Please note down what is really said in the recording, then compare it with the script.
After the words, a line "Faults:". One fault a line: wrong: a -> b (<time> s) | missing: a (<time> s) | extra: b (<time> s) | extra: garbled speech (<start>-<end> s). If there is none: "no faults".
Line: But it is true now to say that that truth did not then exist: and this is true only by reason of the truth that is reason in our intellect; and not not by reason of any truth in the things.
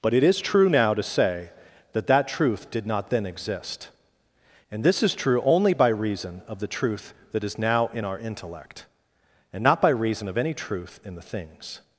But it is true now to say that that truth did not then exist: and this is true only by reason of the truth that is now in our intellect; and not by reason of any truth in the things.
Faults:
wrong: reason -> now (7.6 s)
missing: not (9.8 s)